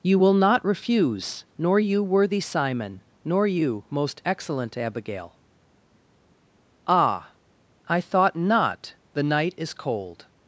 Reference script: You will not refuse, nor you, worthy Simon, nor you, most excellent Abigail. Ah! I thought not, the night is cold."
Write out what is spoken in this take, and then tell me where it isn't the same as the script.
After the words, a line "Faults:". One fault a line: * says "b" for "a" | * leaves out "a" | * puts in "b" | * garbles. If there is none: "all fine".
You will not refuse, nor you, worthy Simon, nor you, most excellent Abigail. Ah! I thought not, the night is cold."
Faults:
all fine